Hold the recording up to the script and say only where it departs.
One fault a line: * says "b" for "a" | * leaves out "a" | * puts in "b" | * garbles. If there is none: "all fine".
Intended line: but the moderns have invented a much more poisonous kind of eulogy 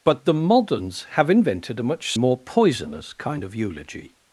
all fine